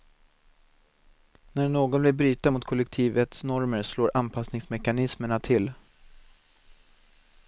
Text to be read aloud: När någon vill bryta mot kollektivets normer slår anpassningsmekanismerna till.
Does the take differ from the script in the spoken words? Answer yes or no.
no